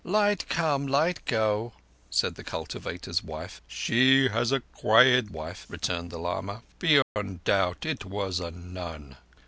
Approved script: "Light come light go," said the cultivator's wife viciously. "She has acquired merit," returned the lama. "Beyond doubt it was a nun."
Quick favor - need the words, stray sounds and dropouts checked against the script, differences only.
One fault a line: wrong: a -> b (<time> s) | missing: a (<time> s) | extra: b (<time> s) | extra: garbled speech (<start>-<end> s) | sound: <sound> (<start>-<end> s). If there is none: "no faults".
missing: viciously (3.6 s)
wrong: merit -> wife (5.3 s)
sound: dropout (7.0-7.2 s)